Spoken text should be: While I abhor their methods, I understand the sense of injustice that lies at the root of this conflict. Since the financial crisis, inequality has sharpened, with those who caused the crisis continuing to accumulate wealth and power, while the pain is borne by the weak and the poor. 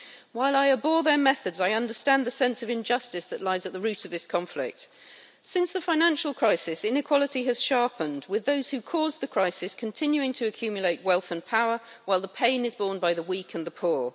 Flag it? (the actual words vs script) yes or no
no